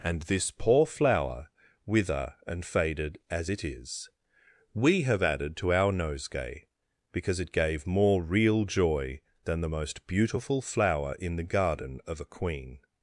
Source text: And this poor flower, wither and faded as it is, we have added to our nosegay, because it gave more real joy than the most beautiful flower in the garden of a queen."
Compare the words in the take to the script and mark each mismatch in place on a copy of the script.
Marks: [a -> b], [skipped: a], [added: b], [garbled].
And this poor flower, wither and faded as it is, we have added to our nosegay, because it gave more real joy than the most beautiful flower in the garden of a queen."